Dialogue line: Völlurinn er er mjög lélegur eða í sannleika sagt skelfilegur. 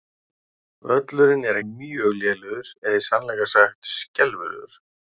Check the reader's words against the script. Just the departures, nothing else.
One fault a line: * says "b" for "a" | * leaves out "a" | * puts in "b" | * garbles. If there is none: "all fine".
all fine